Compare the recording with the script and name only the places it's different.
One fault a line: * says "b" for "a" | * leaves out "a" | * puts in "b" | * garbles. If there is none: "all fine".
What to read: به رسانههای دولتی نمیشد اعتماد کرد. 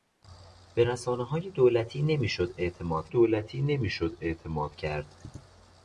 * puts in "دولتی نمیشد اعتماد"